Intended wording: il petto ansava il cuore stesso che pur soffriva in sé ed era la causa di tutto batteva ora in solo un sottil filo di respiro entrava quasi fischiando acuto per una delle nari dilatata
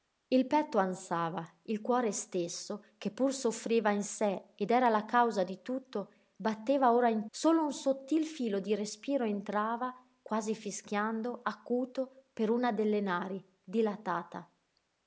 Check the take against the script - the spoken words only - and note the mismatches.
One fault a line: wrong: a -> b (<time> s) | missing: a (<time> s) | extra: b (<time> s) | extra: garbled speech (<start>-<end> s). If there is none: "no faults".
no faults